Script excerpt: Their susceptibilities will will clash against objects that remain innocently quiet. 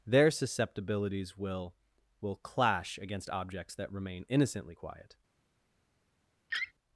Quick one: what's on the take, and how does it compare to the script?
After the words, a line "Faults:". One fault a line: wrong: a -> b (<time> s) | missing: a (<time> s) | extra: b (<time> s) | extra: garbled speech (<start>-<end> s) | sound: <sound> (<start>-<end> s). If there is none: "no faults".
Their susceptibilities will will clash against objects that remain innocently quiet.
Faults:
sound: laugh (6.5-6.7 s)